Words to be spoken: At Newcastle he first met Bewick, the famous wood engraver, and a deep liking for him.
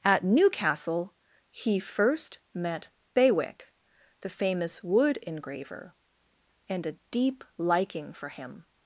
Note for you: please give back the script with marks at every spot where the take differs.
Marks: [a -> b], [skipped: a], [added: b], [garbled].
At Newcastle he first met Bewick, the famous wood engraver, and a deep liking for him.